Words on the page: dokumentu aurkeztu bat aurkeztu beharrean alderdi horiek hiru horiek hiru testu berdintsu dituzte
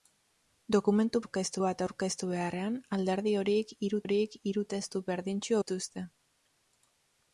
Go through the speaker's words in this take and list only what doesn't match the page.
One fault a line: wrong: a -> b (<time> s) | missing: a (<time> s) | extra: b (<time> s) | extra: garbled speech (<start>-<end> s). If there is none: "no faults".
no faults